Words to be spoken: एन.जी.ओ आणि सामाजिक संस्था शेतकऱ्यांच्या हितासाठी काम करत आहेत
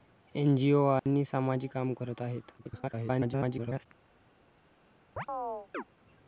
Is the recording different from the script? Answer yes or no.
yes